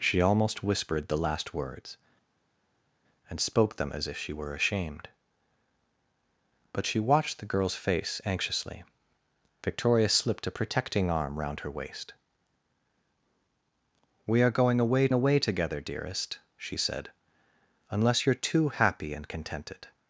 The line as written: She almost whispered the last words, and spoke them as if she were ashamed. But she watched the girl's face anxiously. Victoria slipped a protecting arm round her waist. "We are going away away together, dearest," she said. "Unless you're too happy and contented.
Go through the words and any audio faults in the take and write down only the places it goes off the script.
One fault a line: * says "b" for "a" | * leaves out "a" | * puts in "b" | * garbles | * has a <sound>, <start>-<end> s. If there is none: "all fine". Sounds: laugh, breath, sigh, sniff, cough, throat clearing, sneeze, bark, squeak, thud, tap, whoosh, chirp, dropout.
all fine